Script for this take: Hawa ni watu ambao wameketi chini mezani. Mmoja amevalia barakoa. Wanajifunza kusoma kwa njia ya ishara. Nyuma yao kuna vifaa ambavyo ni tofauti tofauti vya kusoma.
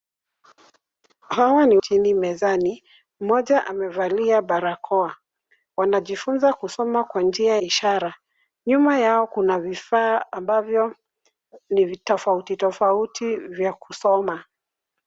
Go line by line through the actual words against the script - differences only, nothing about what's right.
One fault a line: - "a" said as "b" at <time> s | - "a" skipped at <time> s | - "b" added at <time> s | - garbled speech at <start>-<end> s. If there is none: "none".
- "watu ambao wameketi" skipped at 1.8 s
- "ya" skipped at 7.6 s